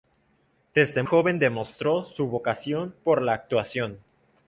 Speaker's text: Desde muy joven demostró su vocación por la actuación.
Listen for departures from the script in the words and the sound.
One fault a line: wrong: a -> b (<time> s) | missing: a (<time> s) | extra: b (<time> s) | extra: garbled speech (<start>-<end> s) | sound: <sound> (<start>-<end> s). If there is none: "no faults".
missing: muy (1.0 s)